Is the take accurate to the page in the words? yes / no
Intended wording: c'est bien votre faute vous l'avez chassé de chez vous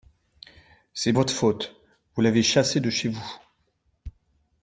no